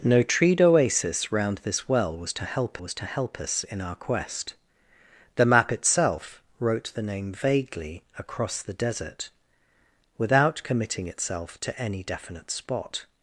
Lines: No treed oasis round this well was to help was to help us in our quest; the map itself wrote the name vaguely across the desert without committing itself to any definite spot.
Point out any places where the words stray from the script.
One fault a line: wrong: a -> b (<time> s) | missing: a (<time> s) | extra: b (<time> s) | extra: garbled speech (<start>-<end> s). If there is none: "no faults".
no faults